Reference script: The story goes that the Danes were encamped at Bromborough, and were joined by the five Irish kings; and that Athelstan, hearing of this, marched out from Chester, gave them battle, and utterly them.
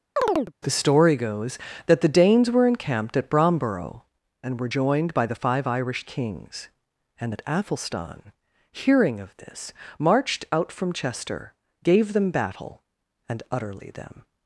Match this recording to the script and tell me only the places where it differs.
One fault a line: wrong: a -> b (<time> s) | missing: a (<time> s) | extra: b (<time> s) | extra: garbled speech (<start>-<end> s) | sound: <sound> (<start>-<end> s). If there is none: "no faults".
sound: chirp (0.2-0.5 s)